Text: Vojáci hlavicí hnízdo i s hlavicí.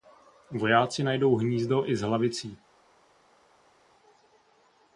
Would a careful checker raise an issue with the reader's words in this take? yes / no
yes